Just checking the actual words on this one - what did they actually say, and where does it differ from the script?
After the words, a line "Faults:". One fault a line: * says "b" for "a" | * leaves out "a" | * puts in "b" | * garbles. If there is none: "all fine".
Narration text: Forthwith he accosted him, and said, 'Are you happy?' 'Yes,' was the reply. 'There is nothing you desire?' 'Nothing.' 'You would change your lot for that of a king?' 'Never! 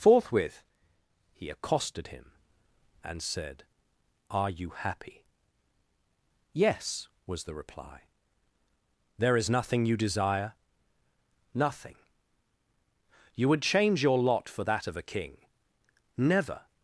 Forthwith he accosted him, and said, 'Are you happy?' 'Yes,' was the reply. 'There is nothing you desire?' 'Nothing.' 'You would change your lot for that of a king?' 'Never!
Faults:
all fine